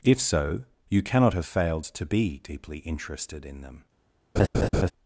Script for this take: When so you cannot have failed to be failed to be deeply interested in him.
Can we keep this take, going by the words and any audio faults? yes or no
no